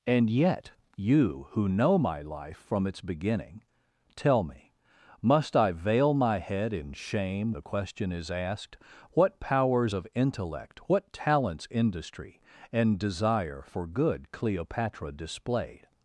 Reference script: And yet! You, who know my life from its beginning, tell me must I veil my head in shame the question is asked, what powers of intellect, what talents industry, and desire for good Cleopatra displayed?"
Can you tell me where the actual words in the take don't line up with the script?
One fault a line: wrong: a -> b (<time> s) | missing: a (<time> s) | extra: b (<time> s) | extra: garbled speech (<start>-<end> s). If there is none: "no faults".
no faults